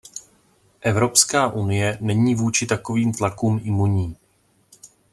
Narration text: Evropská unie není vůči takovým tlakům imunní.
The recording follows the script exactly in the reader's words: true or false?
true